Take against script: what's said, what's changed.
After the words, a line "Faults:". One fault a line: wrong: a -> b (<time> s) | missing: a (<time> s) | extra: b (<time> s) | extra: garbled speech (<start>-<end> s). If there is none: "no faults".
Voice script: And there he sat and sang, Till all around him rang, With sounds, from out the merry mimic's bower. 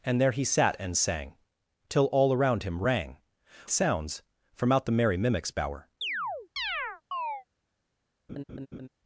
And there he sat and sang, Till all around him rang, Sounds, from out the merry mimic's bower.
Faults:
missing: With (3.2 s)